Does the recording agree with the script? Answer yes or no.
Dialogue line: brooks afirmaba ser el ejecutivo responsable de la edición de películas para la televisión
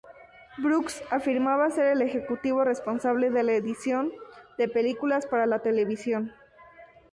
yes